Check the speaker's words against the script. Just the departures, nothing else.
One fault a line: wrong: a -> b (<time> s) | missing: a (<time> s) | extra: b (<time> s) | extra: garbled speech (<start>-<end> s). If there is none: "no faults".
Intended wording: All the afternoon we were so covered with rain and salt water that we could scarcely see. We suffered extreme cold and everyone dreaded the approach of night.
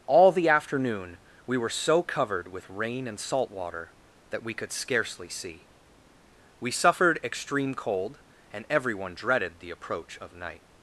no faults